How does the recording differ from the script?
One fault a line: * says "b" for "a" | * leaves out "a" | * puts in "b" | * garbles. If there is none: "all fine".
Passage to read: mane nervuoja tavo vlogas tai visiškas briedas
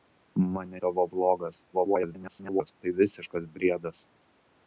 * leaves out "nervuoja"
* garbles